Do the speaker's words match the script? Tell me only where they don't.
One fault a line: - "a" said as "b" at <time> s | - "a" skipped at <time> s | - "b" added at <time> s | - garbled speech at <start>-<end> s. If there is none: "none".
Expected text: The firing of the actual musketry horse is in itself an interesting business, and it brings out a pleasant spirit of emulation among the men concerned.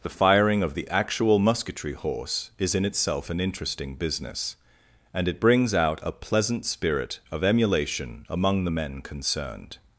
none